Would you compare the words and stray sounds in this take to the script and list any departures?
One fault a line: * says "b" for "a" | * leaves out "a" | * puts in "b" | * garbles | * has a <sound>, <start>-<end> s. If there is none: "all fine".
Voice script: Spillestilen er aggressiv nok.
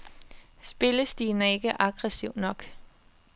* puts in "ikke"